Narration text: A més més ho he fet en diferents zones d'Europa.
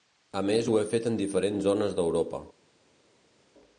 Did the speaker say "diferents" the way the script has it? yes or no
yes